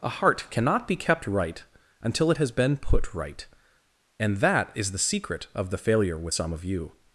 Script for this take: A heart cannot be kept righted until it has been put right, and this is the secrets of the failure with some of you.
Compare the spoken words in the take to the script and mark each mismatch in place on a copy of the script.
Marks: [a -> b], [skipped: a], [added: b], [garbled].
A heart cannot be kept [righted -> right] until it has been put right, and [this -> that] is the [secrets -> secret] of the failure with some of you.